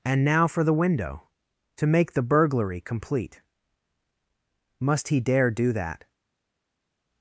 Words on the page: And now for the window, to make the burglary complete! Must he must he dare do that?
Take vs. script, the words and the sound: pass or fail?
fail